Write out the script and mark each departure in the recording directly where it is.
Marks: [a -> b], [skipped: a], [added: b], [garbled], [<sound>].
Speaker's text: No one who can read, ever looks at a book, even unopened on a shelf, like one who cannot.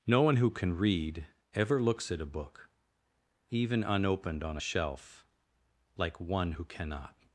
No one who can read, ever looks at a book, even unopened on a shelf, like one who cannot.